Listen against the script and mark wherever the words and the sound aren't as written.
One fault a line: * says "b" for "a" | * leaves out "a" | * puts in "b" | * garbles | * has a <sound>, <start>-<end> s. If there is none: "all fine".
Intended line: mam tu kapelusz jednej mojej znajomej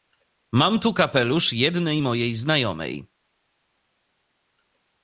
all fine